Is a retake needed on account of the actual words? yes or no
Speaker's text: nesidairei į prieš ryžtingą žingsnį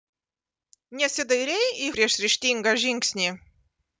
no